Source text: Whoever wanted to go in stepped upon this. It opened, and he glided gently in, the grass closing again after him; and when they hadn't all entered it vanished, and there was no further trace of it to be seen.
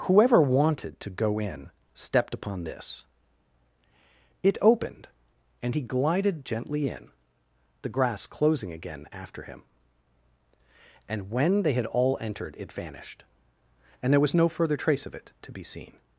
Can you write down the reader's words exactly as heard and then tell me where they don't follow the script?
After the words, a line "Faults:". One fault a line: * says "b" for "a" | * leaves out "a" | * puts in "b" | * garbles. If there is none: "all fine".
Whoever wanted to go in stepped upon this. It opened, and he glided gently in, the grass closing again after him; and when they had all entered it vanished, and there was no further trace of it to be seen.
Faults:
* says "had" for "hadn't"